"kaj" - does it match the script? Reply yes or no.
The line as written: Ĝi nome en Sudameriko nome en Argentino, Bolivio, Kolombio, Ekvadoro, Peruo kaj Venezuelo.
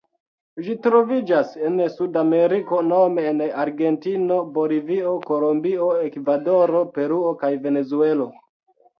yes